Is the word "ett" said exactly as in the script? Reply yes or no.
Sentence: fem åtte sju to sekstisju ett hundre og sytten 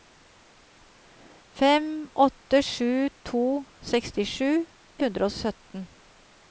no